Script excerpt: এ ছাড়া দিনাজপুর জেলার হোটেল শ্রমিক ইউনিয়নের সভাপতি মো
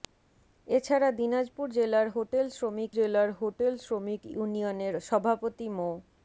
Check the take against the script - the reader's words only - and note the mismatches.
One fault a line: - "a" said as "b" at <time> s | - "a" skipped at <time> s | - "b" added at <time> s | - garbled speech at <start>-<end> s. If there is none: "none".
- "জেলার হোটেল শ্রমিক" added at 2.9 s